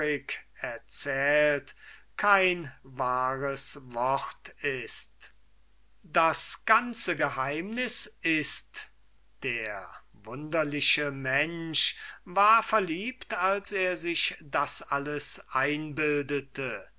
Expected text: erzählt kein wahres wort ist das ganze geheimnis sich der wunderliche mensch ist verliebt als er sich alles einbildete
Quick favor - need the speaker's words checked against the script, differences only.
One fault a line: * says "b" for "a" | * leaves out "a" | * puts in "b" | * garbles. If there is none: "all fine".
* says "ist" for "sich"
* says "war" for "ist"
* puts in "das"